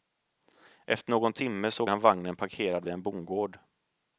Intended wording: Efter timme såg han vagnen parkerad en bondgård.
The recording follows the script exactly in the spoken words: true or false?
false